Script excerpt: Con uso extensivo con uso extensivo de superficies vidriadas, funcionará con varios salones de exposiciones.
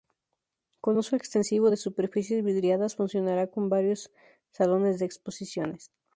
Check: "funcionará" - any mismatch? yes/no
no